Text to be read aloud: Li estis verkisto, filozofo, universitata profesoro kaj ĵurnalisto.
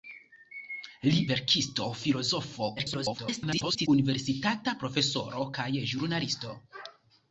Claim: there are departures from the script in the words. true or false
true